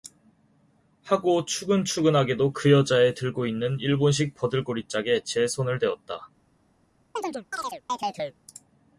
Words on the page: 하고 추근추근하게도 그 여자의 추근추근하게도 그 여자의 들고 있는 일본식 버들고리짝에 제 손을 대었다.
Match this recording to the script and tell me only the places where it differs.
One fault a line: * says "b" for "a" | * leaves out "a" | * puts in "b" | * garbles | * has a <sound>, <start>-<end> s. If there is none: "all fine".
* leaves out "추근추근하게도 그 여자의"
* has a chirp, 7.2-8.4 s